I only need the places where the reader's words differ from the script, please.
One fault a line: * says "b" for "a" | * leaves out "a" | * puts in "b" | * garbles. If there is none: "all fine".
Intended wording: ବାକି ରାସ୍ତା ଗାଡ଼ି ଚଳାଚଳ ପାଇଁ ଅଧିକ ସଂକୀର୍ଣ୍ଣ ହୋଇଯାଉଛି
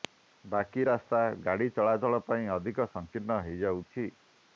all fine